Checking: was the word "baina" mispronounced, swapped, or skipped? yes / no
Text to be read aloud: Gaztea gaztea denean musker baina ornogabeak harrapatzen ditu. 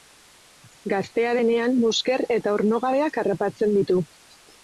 yes